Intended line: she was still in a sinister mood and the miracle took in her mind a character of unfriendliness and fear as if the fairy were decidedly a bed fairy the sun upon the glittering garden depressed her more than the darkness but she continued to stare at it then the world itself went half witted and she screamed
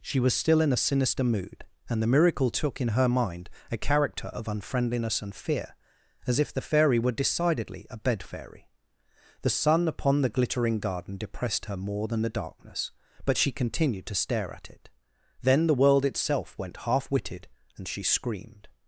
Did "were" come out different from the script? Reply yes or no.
no